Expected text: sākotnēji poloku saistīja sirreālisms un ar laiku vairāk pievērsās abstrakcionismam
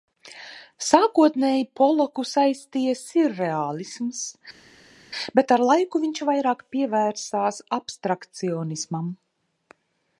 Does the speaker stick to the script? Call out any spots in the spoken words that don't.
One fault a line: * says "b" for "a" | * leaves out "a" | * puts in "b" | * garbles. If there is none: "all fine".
* says "bet" for "un"
* puts in "viņš"